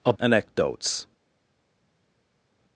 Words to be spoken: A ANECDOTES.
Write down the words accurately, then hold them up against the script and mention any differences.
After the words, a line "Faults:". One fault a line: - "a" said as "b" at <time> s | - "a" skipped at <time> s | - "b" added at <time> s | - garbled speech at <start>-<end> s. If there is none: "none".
A ANECDOTES.
Faults:
none